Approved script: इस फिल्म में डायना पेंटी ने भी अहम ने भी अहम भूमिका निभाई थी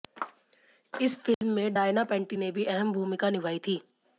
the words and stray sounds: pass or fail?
fail